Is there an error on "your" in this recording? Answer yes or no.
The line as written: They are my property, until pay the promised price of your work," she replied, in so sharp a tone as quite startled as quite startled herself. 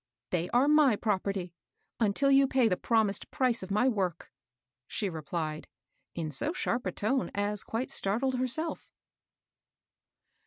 yes